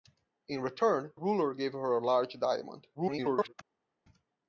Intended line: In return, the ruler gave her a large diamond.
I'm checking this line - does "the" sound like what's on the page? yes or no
no